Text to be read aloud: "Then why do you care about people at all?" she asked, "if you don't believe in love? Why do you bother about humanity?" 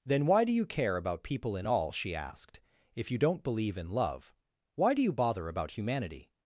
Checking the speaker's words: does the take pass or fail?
fail